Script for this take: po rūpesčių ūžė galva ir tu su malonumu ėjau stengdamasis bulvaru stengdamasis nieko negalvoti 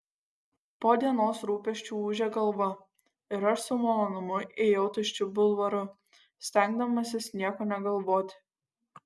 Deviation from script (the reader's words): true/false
true